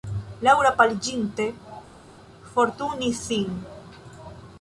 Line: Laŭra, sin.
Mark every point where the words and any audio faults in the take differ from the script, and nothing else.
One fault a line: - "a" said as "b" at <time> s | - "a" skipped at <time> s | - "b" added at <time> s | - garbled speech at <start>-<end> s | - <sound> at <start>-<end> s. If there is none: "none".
- "paliĝinte forturnis" added at 0.8 s